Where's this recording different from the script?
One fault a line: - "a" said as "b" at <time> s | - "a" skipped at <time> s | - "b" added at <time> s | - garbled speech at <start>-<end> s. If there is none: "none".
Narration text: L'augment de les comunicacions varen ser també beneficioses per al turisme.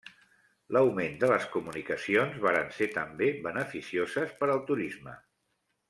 none